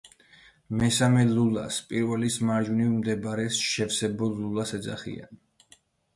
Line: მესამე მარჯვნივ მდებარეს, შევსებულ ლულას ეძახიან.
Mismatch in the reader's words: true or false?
true